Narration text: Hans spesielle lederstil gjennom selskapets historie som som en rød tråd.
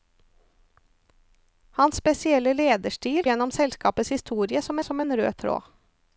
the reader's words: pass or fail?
pass